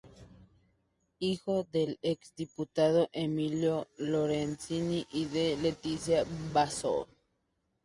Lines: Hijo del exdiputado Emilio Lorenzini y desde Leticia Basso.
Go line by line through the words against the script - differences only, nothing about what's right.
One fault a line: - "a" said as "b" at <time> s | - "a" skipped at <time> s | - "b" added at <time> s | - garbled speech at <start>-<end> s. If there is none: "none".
- "desde" said as "de" at 5.2 s